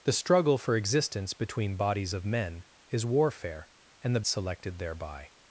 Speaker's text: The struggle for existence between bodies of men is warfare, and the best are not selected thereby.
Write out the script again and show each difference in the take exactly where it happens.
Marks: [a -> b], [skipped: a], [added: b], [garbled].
The struggle for existence between bodies of men is warfare, and the [skipped: best are not] selected thereby.